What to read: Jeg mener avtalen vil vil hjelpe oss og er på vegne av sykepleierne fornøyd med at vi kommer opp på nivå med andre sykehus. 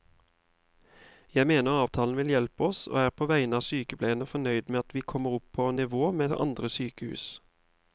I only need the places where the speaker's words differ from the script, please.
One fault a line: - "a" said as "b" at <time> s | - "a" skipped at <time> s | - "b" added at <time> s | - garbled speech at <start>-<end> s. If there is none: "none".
- "vil" skipped at 2.3 s